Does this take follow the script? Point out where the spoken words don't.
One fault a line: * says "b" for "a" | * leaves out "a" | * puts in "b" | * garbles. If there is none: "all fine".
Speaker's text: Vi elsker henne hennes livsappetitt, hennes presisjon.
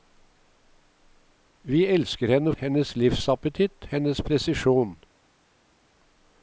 all fine